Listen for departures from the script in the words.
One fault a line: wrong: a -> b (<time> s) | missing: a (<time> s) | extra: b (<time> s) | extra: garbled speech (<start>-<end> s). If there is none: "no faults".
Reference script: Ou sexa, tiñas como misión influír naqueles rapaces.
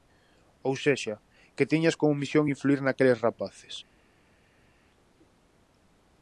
extra: que (1.6 s)